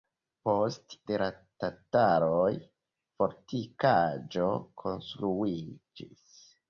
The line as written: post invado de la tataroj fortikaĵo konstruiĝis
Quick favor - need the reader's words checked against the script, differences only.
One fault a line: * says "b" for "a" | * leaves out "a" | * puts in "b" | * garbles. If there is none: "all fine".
* leaves out "invado"